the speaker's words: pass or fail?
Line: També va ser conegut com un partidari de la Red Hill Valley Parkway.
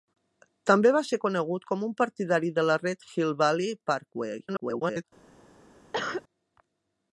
fail